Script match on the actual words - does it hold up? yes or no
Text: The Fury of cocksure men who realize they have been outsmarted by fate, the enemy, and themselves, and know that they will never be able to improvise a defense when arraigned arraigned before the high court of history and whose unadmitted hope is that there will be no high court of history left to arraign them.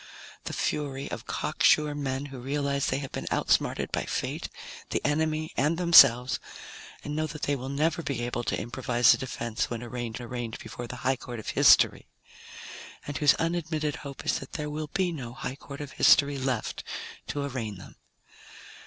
yes